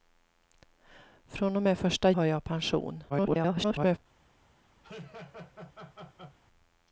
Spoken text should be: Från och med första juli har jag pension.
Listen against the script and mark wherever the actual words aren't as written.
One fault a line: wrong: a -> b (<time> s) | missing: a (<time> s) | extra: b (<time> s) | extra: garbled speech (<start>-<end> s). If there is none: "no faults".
missing: juli (2.1 s)
extra: garbled speech (3.1-4.0 s)